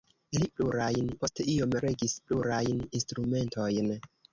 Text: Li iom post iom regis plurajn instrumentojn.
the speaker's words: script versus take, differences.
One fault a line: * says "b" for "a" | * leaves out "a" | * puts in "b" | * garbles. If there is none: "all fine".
* says "plurajn" for "iom"